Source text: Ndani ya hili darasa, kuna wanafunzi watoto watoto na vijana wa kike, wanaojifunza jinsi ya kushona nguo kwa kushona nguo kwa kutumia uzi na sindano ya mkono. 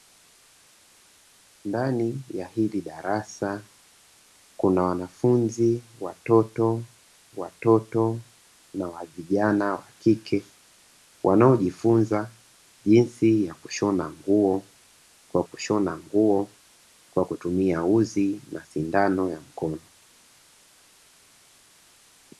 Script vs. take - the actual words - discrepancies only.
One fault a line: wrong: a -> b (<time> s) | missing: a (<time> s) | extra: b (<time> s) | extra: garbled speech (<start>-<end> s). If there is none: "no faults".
no faults